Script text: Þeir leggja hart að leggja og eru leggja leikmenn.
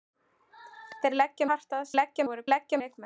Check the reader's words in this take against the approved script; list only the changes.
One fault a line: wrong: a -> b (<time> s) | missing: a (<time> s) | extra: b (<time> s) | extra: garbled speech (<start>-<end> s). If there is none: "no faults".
no faults